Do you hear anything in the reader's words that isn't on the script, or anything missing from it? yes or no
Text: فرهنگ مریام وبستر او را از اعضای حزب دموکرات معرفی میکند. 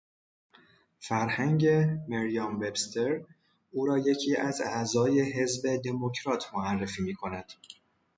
yes